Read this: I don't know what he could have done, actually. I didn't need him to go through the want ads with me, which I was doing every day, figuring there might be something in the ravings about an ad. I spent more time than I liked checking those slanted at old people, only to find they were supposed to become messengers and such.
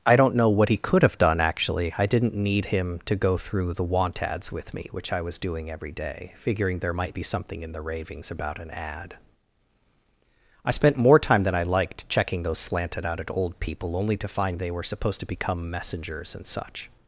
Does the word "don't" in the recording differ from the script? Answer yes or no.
no